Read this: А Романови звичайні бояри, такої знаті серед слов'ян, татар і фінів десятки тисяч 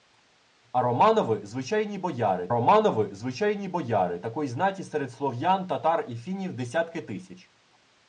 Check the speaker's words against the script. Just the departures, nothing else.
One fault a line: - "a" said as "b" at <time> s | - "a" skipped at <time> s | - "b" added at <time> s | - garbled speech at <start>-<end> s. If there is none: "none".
- "Романови звичайні бояри" added at 2.5 s